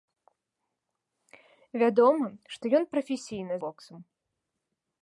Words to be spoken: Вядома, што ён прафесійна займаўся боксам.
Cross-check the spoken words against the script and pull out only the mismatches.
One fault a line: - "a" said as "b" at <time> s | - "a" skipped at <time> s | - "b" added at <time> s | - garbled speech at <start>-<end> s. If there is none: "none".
- "займаўся" skipped at 3.5 s